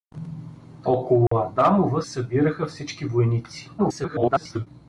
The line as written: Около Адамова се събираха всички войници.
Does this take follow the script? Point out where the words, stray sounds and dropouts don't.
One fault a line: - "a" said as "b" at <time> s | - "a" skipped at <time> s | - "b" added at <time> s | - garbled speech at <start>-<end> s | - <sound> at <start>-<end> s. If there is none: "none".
- dropout at 1.3-1.3 s
- "се" skipped at 2.0 s
- garbled speech at 3.8-4.7 s